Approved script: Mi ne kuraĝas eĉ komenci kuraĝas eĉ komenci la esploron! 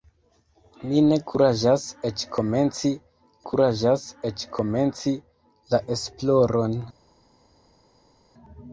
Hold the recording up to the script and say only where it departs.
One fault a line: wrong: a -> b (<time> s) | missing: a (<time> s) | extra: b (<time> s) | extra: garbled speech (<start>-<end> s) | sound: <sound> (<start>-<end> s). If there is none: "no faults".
no faults